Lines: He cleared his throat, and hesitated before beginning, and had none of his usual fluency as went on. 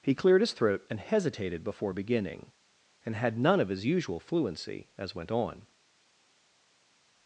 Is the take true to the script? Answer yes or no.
yes